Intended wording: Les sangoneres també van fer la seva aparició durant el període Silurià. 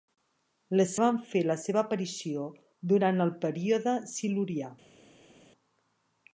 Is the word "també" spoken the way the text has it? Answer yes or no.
no